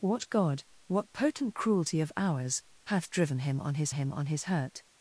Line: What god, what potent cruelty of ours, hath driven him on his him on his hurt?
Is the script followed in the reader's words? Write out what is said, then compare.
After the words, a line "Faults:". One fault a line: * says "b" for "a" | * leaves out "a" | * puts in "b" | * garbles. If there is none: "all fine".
What god, what potent cruelty of ours, hath driven him on his him on his hurt?
Faults:
all fine